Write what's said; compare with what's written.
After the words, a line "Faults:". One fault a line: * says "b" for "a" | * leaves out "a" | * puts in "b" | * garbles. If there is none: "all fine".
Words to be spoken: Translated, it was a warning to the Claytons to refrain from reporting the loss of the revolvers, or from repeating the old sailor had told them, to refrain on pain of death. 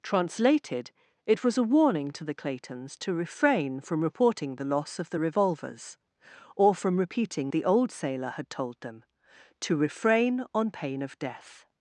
Translated, it was a warning to the Claytons to refrain from reporting the loss of the revolvers, or from repeating the old sailor had told them, to refrain on pain of death.
Faults:
all fine